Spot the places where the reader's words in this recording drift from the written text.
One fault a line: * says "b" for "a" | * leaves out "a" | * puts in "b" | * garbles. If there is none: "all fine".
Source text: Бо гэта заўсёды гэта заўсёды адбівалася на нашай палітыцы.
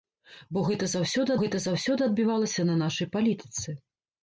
all fine